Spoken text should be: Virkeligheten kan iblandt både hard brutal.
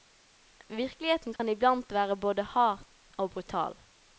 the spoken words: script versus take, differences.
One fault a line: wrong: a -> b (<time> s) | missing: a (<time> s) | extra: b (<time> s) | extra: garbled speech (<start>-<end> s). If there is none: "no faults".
extra: være (1.9 s)
extra: og (3.2 s)